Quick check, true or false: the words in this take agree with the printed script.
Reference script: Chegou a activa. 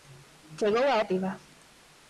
true